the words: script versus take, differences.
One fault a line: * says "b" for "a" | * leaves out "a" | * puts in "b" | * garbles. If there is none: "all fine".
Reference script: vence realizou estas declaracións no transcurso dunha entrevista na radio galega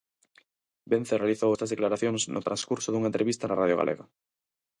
all fine